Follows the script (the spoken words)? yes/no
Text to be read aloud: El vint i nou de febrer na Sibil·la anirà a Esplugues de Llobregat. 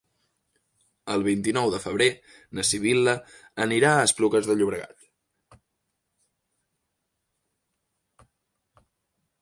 yes